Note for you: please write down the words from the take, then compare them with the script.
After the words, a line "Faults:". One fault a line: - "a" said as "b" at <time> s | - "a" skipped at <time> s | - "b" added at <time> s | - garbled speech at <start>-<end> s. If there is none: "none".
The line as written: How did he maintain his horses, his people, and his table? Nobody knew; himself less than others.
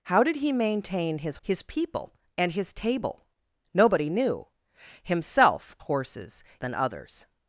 How did he maintain his his people, and his table? Nobody knew; himself horses than others.
Faults:
- "horses" skipped at 1.4 s
- "less" said as "horses" at 5.8 s